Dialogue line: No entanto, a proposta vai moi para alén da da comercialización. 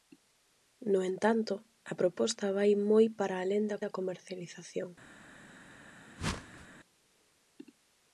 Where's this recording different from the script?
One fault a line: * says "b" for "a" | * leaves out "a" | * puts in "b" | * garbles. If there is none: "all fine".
all fine